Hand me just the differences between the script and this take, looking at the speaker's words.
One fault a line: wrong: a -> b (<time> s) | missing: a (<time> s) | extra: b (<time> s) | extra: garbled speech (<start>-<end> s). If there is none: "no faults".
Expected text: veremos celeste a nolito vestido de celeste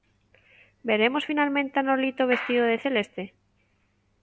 wrong: celeste -> finalmente (1.3 s)